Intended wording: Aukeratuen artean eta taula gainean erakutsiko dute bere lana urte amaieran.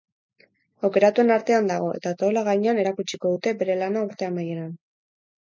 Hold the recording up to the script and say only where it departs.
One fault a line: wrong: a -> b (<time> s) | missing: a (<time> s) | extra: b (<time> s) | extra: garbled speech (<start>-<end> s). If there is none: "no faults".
extra: dago (1.7 s)